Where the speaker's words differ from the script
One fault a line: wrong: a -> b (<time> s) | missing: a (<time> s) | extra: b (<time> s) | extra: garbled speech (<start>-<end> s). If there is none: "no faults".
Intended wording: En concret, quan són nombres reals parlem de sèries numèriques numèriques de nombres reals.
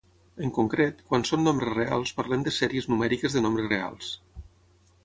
missing: numèriques (3.4 s)